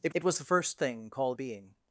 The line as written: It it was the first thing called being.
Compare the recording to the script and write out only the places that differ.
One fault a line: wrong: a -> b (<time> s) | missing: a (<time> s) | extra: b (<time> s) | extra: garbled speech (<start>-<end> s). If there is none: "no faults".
no faults